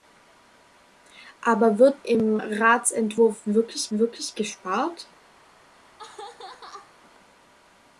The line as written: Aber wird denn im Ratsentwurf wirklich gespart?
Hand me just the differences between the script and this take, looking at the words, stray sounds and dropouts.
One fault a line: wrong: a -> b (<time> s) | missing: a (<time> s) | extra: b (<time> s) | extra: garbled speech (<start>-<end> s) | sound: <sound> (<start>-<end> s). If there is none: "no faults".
missing: denn (2.0 s)
extra: wirklich (3.9 s)
sound: laugh (5.7-7.0 s)